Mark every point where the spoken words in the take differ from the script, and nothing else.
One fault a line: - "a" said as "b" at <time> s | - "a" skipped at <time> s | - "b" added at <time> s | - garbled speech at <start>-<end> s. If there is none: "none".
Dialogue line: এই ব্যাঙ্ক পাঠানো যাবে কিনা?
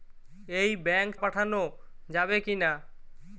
none